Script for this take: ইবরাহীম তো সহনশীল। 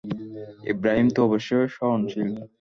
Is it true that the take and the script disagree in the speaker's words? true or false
true